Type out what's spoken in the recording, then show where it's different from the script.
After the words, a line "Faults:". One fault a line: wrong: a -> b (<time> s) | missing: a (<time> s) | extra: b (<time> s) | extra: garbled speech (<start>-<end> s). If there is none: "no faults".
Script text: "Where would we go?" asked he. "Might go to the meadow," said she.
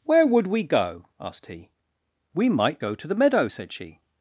"Where would we go?" asked he. "We might go to the meadow," said she.
Faults:
extra: We (2.3 s)